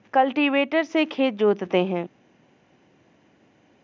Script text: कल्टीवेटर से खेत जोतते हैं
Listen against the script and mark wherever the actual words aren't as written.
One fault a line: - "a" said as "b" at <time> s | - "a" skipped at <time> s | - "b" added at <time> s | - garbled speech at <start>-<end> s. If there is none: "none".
none